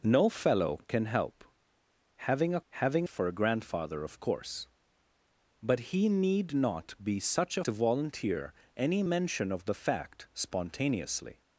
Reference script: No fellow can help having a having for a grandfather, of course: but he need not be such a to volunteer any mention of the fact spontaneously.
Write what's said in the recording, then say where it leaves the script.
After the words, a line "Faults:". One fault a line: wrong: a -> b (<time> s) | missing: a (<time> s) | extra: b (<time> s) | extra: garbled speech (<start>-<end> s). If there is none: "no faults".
No fellow can help having a having for a grandfather, of course: but he need not be such a to volunteer any mention of the fact spontaneously.
Faults:
no faults